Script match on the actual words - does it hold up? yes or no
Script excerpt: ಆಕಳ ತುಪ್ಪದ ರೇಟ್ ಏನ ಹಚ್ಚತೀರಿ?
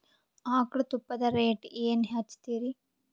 yes